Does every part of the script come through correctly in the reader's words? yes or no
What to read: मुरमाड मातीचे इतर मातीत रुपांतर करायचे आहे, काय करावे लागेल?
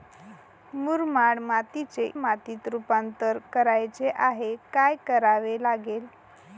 no